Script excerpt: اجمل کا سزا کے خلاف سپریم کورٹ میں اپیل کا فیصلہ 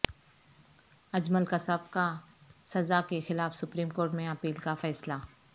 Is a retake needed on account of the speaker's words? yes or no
yes